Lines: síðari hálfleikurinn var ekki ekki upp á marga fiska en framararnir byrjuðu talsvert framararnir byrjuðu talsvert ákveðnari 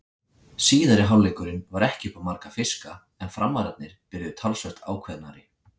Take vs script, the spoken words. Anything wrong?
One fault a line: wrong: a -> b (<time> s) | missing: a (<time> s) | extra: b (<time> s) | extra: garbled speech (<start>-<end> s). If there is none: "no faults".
missing: ekki (2.1 s)
missing: framararnir byrjuðu talsvert (4.8 s)